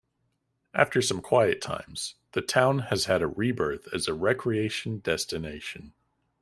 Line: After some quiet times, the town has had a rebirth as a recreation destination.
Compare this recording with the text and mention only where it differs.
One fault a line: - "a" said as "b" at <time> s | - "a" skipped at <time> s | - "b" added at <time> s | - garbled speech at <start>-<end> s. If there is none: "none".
none